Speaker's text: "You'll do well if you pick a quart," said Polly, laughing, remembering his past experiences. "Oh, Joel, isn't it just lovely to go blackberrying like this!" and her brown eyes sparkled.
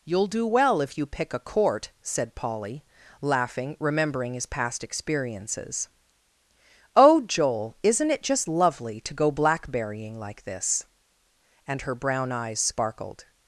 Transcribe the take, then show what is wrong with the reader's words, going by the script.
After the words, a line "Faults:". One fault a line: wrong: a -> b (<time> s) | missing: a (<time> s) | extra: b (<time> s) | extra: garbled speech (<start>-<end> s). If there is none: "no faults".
"You'll do well if you pick a court," said Polly, laughing, remembering his past experiences. "Oh, Joel, isn't it just lovely to go blackberrying like this!" and her brown eyes sparkled.
Faults:
wrong: quart -> court (1.4 s)